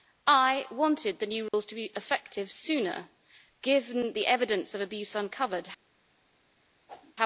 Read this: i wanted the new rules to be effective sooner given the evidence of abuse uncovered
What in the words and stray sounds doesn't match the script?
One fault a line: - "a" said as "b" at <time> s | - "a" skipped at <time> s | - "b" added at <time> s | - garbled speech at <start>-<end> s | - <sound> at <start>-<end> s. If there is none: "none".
- dropout at 1.5-1.5 s
- whoosh at 6.9-7.2 s